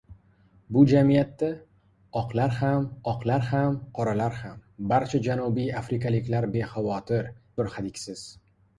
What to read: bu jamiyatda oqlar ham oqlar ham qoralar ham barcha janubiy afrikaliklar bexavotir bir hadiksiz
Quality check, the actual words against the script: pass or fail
pass